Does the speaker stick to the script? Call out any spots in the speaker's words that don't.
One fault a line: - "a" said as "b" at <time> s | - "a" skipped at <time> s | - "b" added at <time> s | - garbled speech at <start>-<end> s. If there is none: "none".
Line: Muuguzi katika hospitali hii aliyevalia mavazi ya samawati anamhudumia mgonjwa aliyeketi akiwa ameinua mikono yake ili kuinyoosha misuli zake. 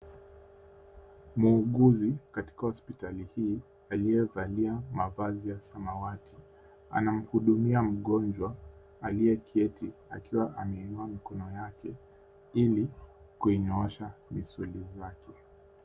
none